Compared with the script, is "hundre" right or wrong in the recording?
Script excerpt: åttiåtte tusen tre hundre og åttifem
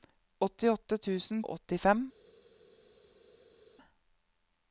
wrong